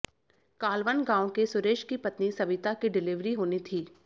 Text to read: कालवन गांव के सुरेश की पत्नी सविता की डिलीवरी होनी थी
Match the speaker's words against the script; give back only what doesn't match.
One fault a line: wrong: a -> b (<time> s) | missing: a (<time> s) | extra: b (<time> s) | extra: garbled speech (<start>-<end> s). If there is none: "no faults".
no faults